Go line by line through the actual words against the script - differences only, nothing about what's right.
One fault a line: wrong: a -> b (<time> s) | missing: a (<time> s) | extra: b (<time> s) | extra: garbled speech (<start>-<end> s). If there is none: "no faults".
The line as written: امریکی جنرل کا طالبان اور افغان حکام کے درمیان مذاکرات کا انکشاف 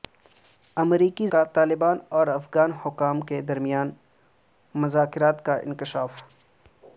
missing: جنرل (1.3 s)